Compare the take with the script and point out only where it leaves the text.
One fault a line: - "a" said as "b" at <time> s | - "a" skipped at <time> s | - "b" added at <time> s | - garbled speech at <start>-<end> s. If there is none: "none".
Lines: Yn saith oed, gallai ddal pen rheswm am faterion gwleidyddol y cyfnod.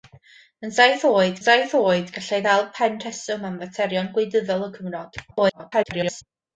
- "saith oed" added at 1.5 s
- garbled speech at 5.3-6.2 s